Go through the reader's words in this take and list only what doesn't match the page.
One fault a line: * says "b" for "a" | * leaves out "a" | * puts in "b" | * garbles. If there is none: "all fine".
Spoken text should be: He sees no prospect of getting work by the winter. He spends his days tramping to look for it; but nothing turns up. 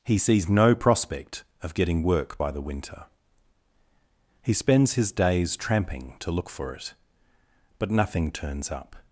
all fine